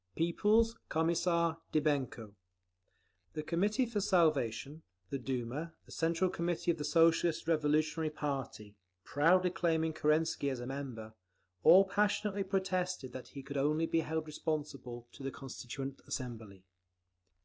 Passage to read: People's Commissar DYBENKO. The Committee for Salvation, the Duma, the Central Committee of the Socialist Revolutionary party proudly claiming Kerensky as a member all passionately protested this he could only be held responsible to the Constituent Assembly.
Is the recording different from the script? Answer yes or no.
yes